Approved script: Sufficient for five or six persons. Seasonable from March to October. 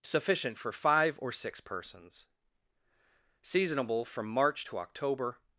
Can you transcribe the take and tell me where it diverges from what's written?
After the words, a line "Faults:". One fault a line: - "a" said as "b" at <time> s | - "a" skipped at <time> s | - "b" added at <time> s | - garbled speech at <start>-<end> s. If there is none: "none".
Sufficient for five or six persons. Seasonable from March to October.
Faults:
none